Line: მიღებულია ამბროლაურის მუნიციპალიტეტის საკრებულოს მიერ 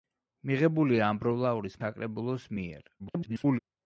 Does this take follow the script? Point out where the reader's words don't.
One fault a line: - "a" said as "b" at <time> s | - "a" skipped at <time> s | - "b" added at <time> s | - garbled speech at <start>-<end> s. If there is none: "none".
- "მუნიციპალიტეტის" skipped at 1.8 s
- garbled speech at 3.0-3.6 s